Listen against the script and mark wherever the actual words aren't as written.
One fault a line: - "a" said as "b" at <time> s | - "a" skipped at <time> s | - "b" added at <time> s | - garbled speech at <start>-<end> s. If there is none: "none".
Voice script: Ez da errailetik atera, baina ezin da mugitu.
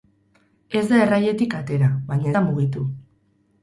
- "ezin" skipped at 2.3 s